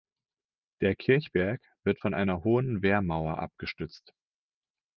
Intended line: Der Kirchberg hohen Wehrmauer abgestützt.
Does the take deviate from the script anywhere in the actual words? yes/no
yes